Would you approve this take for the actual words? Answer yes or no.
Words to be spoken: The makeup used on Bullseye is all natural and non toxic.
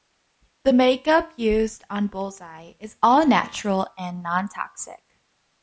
yes